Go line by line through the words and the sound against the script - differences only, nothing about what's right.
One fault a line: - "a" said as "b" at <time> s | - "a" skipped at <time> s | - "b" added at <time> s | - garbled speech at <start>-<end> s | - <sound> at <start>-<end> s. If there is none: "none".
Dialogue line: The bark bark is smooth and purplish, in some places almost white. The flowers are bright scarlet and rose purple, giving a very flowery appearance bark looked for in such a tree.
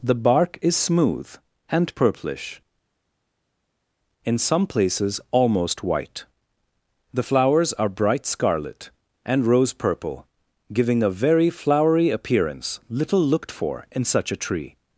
- "bark" skipped at 0.6 s
- "bark" said as "little" at 12.9 s